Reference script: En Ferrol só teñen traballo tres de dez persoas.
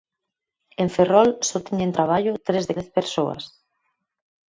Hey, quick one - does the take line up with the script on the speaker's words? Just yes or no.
yes